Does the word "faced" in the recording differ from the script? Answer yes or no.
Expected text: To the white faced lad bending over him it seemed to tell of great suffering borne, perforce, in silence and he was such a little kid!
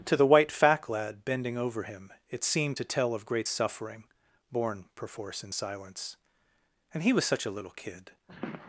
yes